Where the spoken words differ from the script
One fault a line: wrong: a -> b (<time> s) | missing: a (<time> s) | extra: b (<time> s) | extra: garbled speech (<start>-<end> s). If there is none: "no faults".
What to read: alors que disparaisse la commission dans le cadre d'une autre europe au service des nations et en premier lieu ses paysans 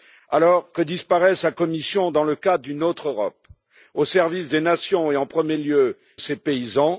no faults